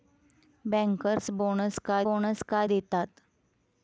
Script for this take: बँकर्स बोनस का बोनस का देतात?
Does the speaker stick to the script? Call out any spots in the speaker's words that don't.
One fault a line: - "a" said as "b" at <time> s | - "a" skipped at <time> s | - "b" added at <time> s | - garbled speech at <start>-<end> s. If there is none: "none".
none